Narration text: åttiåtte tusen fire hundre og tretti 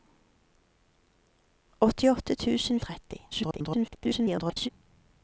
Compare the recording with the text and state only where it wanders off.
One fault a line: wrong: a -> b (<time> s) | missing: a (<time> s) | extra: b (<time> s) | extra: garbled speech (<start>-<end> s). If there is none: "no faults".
missing: fire hundre (2.8 s)
extra: garbled speech (3.3-4.7 s)